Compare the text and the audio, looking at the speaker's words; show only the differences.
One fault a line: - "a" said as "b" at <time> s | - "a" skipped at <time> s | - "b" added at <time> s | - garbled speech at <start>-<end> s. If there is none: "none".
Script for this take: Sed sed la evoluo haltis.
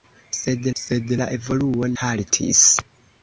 none